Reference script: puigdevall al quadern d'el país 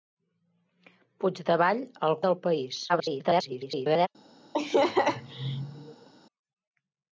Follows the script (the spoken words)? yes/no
no